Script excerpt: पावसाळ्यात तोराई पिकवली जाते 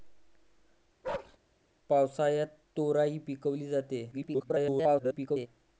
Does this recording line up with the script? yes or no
no